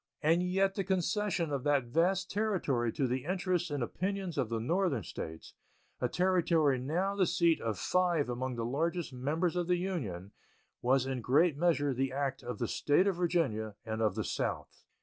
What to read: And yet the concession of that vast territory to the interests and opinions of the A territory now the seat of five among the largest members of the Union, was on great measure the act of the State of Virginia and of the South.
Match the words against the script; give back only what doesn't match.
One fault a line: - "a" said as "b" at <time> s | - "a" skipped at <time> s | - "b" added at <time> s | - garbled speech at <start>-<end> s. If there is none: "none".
- "Northern States" added at 4.6 s
- "on" said as "in" at 11.1 s